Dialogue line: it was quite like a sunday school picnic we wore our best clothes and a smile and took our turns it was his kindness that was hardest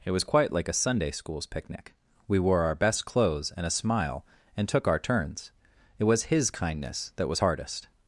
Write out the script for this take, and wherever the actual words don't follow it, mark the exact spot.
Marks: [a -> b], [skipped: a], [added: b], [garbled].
it was quite like a sunday [school -> schools] picnic we wore our best clothes and a smile and took our turns it was his kindness that was hardest